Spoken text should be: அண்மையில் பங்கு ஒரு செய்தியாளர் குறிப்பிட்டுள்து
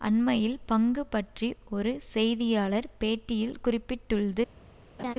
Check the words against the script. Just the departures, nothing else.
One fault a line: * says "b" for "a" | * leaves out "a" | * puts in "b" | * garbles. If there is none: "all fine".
* puts in "பற்றி"
* puts in "பேட்டியில்"